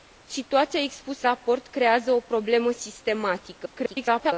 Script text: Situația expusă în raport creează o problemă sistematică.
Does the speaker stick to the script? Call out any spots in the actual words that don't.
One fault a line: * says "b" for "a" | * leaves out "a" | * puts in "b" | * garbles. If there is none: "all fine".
* leaves out "în"
* garbles